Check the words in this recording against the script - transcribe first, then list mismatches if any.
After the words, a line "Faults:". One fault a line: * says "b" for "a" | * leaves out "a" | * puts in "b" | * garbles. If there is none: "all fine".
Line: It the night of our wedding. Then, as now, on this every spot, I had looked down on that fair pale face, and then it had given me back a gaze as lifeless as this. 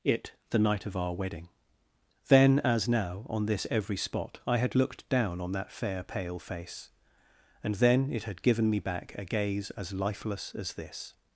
It the night of our wedding. Then, as now, on this every spot, I had looked down on that fair pale face, and then it had given me back a gaze as lifeless as this.
Faults:
all fine